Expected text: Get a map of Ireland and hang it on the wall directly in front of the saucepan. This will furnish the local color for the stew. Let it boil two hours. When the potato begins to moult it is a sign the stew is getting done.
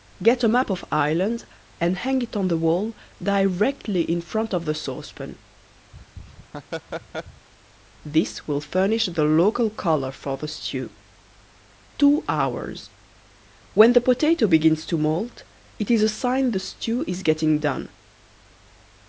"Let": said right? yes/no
no